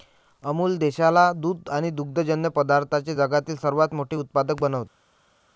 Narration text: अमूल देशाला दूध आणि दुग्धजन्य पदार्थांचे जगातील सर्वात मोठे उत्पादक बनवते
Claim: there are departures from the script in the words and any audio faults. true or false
false